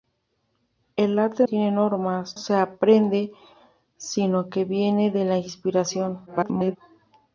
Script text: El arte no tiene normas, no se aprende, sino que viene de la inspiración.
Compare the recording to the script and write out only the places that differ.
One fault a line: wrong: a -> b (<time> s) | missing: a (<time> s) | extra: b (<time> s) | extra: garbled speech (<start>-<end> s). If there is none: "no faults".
missing: no (1.4 s)
missing: no (2.4 s)
extra: garbled speech (6.3-6.8 s)